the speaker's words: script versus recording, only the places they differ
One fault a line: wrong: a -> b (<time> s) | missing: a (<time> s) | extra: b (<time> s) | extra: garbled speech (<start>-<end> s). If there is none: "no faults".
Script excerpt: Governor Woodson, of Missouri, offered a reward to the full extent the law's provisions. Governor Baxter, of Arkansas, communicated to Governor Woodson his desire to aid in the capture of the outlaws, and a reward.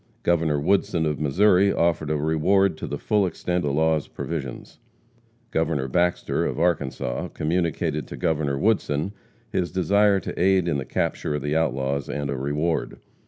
no faults